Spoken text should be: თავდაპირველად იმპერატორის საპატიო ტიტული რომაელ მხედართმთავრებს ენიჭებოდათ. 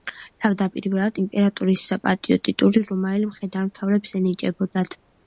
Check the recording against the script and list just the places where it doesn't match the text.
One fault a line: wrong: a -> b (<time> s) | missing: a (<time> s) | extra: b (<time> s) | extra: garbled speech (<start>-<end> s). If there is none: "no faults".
no faults